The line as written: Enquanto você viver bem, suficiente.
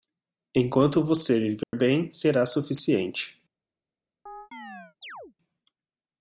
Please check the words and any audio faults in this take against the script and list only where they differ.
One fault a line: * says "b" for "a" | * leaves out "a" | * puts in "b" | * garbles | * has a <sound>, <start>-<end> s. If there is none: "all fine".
* has a dropout, 1.6-1.7 s
* puts in "será"
* has a chirp, 4.3-5.3 s